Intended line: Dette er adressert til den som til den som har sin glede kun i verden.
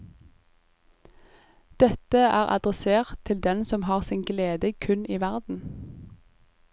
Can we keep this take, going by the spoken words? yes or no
no